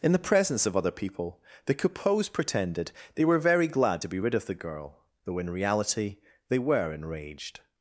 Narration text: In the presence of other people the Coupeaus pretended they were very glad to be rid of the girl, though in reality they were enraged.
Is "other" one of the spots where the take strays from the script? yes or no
no